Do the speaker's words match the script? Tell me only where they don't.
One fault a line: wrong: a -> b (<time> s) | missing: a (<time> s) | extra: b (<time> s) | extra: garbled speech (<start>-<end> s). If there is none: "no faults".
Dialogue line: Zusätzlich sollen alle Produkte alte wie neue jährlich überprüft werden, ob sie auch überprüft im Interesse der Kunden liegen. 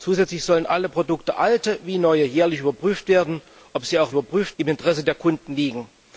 no faults